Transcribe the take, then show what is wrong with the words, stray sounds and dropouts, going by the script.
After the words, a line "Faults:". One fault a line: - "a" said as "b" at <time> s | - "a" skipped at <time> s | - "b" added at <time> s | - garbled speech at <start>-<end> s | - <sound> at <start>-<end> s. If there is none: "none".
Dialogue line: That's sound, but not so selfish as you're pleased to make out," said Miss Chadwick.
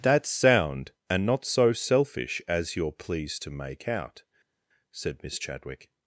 That's sound, and not so selfish as you're pleased to make out," said Miss Chadwick.
Faults:
- "but" said as "and" at 1.1 s